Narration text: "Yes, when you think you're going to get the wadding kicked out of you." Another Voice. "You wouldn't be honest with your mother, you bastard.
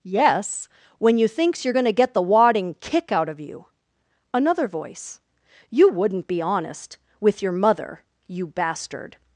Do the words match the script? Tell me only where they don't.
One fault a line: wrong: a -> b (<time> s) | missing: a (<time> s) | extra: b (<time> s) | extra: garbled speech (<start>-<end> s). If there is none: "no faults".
wrong: think -> thinks (1.3 s)
wrong: kicked -> kick (2.8 s)